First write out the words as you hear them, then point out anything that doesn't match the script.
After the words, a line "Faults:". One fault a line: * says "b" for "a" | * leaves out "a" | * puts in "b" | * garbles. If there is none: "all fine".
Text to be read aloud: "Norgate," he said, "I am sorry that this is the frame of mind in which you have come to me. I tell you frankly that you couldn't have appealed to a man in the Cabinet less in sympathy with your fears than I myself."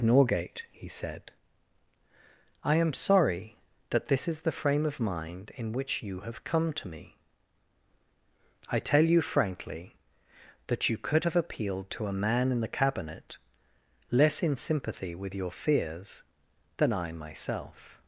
"Norgate," he said, "I am sorry that this is the frame of mind in which you have come to me. I tell you frankly that you could have appealed to a man in the Cabinet less in sympathy with your fears than I myself."
Faults:
* says "could" for "couldn't"